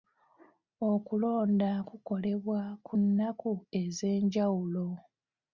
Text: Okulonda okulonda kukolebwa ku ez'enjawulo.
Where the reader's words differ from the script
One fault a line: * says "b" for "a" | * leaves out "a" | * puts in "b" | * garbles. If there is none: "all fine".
* leaves out "okulonda"
* puts in "nnaku"